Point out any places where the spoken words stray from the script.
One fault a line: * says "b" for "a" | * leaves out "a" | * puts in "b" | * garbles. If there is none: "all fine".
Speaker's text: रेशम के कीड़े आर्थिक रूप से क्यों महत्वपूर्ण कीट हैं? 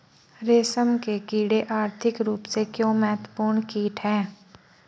all fine